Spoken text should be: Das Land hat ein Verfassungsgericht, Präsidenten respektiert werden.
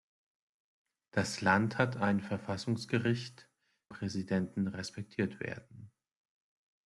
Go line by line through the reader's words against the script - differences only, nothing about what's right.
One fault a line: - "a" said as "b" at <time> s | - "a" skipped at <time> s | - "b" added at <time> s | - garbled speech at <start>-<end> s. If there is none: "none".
none